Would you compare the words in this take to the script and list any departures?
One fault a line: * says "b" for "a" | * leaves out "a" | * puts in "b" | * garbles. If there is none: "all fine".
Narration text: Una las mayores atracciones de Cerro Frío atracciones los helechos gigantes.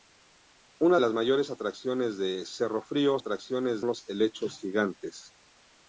all fine